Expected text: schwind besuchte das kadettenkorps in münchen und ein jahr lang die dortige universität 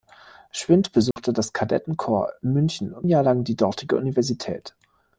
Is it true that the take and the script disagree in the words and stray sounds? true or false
true